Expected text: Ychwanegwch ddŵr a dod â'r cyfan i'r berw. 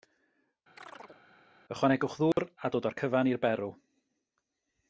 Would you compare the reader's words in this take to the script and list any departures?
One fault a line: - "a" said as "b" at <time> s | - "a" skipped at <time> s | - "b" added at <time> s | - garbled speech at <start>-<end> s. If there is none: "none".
none